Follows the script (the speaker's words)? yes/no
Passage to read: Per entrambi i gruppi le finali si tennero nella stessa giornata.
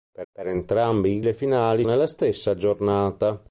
no